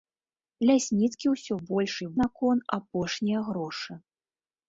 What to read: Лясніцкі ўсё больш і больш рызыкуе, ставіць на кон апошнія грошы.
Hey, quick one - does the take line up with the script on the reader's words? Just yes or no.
no